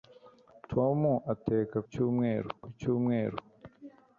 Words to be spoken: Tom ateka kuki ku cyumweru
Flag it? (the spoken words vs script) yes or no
yes